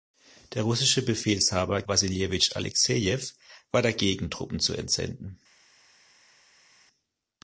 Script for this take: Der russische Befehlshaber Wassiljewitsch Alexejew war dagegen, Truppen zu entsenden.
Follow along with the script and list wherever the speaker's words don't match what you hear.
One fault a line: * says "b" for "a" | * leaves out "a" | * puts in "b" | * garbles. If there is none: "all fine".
all fine